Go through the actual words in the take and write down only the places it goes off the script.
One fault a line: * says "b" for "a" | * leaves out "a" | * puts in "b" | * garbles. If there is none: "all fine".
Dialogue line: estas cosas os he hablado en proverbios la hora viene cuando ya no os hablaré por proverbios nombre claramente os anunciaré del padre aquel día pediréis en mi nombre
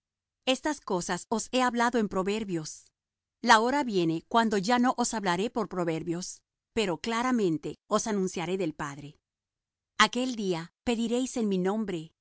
* says "pero" for "nombre"